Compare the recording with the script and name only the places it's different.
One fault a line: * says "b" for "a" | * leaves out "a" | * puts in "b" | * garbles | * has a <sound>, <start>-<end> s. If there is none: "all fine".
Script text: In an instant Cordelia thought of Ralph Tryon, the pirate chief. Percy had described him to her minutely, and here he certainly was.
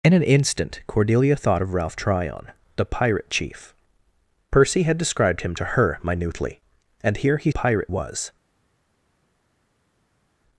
* says "pirate" for "certainly"